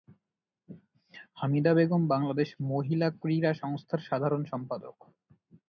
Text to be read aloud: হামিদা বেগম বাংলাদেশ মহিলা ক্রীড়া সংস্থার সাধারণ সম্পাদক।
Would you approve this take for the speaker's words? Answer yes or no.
yes